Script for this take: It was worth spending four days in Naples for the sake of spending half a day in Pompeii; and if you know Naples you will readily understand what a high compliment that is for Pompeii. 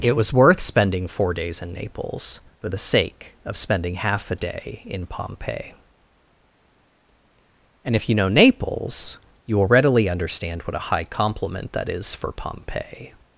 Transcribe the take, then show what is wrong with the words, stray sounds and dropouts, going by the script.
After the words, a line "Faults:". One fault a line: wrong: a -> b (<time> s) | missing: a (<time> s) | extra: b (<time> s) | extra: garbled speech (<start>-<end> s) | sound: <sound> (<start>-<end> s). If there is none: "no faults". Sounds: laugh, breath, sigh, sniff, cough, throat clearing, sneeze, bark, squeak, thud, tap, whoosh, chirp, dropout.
It was worth spending four days in Naples for the sake of spending half a day in Pompeii; and if you know Naples you will readily understand what a high compliment that is for Pompeii.
Faults:
no faults